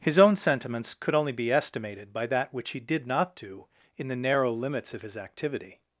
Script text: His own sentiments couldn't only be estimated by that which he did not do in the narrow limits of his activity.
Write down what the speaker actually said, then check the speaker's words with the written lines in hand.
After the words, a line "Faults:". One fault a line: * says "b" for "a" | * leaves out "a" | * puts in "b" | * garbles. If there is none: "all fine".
His own sentiments could only be estimated by that which he did not do in the narrow limits of his activity.
Faults:
* says "could" for "couldn't"